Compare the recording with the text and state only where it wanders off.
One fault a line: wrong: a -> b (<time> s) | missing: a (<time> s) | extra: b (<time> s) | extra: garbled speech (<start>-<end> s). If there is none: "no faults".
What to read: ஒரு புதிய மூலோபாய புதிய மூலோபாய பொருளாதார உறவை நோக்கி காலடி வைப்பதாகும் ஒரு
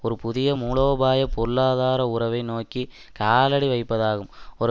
missing: புதிய மூலோபாய (1.3 s)